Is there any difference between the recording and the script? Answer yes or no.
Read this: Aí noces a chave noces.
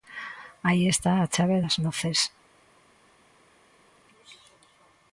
yes